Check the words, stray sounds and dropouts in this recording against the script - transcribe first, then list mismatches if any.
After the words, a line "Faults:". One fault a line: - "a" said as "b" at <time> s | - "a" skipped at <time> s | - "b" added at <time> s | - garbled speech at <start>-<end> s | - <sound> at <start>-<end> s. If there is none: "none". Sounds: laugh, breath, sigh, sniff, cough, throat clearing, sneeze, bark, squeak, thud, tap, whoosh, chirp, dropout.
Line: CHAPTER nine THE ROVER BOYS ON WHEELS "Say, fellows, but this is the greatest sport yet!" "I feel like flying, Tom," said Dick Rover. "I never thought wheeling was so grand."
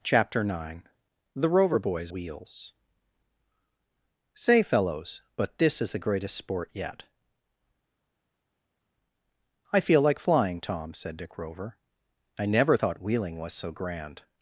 CHAPTER nine THE ROVER BOYS WHEELS "Say, fellows, but this is the greatest sport yet!" "I feel like flying, Tom," said Dick Rover. "I never thought wheeling was so grand."
Faults:
- "ON" skipped at 2.1 s